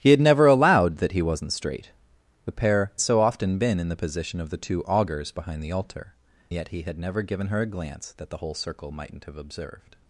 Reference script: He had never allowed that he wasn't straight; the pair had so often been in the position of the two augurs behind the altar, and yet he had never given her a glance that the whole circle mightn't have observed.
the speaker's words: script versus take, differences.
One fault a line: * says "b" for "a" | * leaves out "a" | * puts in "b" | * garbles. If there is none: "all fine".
* leaves out "had"
* leaves out "and"